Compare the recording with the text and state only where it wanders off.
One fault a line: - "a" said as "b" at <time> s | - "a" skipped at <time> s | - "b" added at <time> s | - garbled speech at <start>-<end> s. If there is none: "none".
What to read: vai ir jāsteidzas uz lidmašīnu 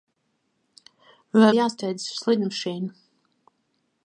none